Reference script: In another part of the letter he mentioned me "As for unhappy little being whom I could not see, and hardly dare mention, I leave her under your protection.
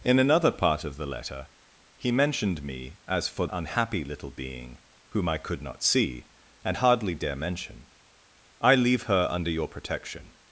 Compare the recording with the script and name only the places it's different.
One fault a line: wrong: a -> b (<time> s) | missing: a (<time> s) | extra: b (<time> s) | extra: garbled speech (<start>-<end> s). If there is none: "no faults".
no faults